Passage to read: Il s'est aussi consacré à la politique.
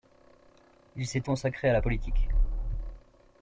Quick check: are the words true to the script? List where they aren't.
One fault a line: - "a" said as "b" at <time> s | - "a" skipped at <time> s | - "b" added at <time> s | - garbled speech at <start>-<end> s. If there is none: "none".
- "aussi" skipped at 1.3 s